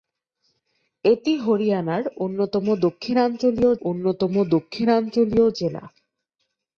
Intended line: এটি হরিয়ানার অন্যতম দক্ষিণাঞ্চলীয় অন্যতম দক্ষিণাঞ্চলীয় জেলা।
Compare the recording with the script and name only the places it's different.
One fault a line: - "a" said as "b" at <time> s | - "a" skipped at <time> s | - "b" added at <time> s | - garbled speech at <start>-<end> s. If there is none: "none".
none